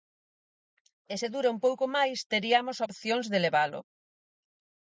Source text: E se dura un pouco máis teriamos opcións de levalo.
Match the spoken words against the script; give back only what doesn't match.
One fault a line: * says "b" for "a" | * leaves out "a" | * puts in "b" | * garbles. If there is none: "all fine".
all fine